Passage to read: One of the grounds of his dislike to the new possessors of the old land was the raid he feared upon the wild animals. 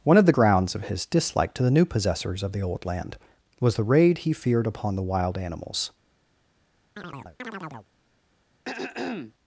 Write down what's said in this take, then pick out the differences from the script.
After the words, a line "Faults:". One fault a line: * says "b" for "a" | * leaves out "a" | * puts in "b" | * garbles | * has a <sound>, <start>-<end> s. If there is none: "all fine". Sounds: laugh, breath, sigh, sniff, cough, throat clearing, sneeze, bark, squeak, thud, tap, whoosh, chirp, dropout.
One of the grounds of his dislike to the new possessors of the old land was the raid he feared upon the wild animals.
Faults:
* has a chirp, 7.0-7.9 s
* has a throat clearing, 8.6-9.3 s